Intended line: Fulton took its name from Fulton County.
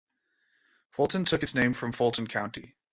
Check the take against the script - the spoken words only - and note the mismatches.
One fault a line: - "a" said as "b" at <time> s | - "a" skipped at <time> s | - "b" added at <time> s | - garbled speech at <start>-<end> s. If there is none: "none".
none